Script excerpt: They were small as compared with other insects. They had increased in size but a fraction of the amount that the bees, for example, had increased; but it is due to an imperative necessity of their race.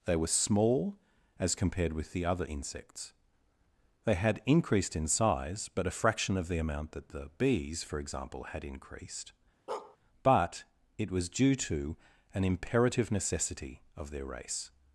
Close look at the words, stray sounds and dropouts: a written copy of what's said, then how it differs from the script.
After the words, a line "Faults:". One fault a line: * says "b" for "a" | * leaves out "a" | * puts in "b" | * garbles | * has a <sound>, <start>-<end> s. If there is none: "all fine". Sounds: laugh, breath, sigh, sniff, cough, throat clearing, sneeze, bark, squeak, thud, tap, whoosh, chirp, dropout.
They were small as compared with the other insects. They had increased in size but a fraction of the amount that the bees, for example, had increased; but it was due to an imperative necessity of their race.
Faults:
* puts in "the"
* has a bark, 9.7-10.0 s
* says "was" for "is"